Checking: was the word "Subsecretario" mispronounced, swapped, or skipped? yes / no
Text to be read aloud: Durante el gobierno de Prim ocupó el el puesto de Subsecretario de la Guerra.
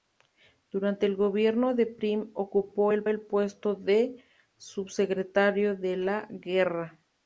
no